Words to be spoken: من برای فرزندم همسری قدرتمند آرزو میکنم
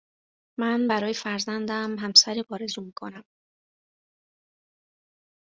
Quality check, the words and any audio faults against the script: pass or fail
fail